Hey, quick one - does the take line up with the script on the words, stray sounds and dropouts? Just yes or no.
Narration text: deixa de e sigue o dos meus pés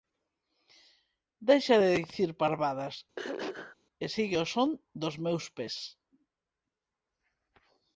no